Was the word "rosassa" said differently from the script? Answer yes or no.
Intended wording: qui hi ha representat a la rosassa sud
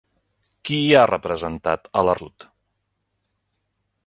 yes